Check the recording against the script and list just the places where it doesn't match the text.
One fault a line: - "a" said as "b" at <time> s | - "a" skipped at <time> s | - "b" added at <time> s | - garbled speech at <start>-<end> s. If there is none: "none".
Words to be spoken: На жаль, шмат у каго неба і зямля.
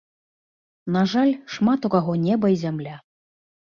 none